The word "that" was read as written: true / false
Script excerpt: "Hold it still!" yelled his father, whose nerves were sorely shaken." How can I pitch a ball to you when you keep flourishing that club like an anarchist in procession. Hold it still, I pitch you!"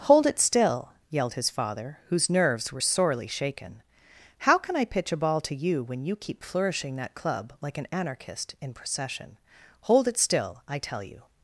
true